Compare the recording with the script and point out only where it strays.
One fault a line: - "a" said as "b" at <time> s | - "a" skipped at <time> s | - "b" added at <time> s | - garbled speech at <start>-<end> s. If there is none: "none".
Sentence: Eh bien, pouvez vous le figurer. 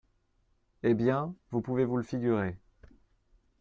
- "vous" added at 1.5 s